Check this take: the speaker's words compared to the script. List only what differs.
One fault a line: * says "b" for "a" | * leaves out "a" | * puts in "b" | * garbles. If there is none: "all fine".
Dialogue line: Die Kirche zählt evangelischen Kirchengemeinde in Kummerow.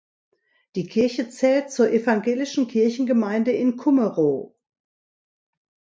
* puts in "zur"